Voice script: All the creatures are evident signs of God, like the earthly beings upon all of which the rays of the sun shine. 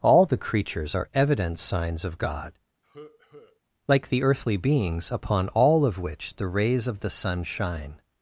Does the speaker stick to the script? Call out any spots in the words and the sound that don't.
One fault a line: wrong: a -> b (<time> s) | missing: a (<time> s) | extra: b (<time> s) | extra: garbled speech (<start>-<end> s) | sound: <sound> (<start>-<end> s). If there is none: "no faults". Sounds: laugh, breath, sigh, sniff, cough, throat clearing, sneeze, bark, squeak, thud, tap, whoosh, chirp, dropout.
sound: cough (2.8-3.6 s)